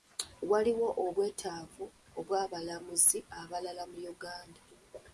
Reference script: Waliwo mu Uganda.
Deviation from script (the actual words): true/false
true